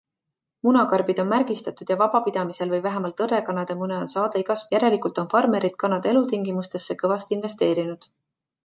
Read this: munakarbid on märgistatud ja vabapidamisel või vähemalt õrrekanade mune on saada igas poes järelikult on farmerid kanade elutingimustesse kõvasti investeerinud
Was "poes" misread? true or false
true